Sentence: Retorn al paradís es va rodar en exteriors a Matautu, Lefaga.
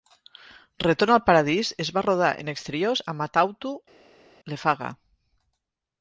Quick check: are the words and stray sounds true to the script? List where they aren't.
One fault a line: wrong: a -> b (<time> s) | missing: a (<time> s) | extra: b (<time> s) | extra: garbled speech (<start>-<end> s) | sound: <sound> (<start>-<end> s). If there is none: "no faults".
no faults